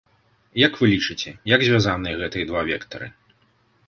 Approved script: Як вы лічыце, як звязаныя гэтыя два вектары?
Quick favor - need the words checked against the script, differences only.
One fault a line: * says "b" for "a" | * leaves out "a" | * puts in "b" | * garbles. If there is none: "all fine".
all fine